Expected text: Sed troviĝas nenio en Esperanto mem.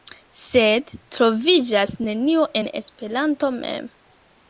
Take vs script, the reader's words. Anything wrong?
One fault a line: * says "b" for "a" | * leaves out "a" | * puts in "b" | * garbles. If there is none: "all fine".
all fine